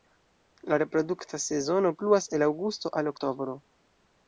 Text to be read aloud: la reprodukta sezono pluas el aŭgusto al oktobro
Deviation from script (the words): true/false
false